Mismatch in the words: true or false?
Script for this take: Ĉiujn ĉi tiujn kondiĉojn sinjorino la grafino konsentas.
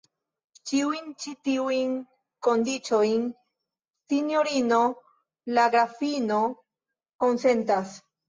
false